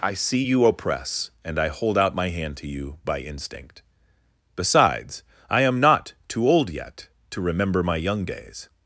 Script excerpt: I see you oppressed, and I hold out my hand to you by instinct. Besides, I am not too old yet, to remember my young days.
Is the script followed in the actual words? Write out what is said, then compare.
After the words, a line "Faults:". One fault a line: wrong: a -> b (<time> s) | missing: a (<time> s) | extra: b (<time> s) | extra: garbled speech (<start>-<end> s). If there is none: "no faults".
I see you oppress, and I hold out my hand to you by instinct. Besides, I am not too old yet, to remember my young days.
Faults:
wrong: oppressed -> oppress (0.7 s)